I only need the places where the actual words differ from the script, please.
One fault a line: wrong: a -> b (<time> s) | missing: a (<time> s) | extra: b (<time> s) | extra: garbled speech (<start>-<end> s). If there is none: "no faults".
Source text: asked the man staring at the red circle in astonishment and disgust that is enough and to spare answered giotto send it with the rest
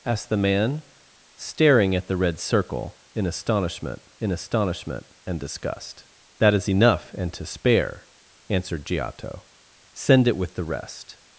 extra: in astonishment (4.2 s)